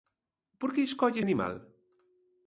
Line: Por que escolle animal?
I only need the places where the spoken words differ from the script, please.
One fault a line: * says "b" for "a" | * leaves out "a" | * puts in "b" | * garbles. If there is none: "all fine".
all fine